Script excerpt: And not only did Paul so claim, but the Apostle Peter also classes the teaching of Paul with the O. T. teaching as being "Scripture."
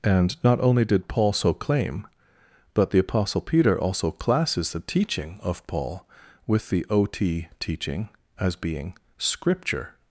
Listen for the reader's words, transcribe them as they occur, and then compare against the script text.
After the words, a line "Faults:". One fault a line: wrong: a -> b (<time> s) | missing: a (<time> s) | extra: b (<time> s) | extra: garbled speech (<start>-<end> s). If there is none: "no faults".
And not only did Paul so claim, but the Apostle Peter also classes the teaching of Paul with the O. T. teaching as being "Scripture."
Faults:
no faults